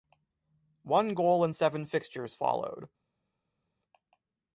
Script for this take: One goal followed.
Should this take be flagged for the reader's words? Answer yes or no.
yes